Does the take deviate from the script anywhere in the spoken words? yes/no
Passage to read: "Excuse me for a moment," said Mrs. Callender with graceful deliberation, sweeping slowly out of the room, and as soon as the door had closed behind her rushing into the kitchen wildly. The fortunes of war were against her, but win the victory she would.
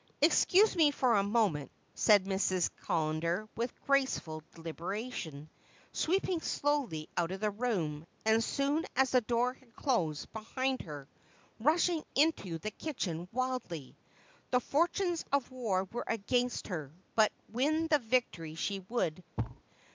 no